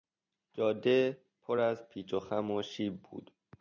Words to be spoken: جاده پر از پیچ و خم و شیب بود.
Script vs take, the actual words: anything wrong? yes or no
no